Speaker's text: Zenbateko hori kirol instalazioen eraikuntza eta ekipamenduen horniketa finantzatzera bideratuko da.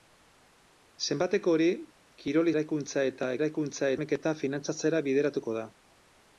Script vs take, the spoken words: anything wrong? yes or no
yes